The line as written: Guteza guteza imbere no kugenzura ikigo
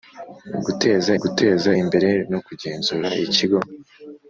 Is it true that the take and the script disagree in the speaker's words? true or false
false